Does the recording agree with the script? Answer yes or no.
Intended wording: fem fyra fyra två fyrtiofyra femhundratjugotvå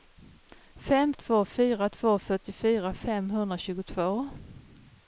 no